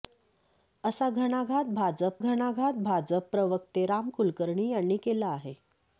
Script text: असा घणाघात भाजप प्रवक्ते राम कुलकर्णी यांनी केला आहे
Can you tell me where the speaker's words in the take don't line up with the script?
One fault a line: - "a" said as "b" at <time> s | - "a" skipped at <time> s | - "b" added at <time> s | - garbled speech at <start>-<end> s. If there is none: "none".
- "घणाघात भाजप" added at 2.2 s